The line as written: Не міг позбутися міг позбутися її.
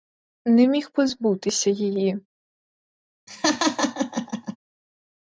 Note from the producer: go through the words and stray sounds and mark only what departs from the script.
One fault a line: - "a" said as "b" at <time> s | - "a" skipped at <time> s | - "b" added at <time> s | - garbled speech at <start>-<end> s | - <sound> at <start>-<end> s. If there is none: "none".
- "міг позбутися" skipped at 1.7 s
- laugh at 3.3-4.6 s